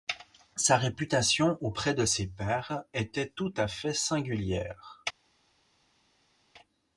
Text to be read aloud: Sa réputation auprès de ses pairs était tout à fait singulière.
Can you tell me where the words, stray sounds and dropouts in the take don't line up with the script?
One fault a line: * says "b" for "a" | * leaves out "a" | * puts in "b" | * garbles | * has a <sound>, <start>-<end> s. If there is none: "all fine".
all fine